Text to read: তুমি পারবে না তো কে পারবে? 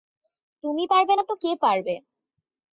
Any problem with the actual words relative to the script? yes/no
no